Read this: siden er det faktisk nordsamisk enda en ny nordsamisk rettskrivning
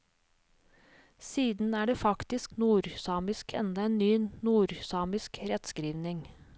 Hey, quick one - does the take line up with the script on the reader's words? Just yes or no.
yes